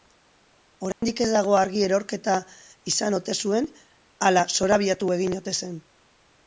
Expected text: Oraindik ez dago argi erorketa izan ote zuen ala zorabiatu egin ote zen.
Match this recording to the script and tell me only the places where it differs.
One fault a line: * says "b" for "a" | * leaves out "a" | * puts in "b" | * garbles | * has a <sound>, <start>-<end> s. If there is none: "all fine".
* has a dropout, 0.9-1.0 s